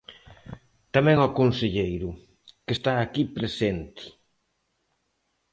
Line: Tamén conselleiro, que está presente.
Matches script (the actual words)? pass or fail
fail